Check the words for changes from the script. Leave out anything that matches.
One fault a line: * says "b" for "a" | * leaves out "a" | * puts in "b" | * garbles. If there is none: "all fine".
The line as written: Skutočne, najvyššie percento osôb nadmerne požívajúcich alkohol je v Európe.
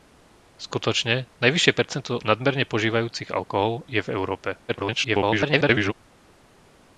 * leaves out "osôb"
* garbles